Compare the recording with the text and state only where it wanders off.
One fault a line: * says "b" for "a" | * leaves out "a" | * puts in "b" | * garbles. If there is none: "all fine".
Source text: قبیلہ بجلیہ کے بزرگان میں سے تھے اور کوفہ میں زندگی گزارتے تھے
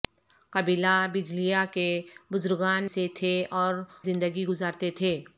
* leaves out "میں"
* leaves out "کوفہ میں"